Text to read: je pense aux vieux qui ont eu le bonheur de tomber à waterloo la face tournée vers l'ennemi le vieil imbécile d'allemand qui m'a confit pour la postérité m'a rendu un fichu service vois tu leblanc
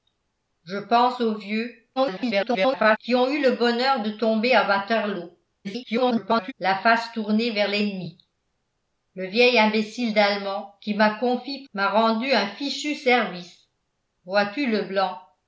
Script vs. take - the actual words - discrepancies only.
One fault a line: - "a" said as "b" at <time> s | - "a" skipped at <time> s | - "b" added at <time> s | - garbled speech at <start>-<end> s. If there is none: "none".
- garbled speech at 2.0-3.0 s
- garbled speech at 5.6-6.5 s
- "pour la postérité" skipped at 11.6 s